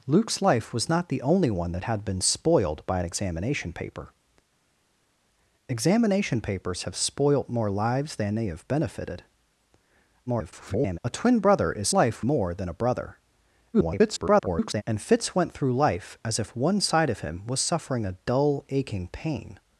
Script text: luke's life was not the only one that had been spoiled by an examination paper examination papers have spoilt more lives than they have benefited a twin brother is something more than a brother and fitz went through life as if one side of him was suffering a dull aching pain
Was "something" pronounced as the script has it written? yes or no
no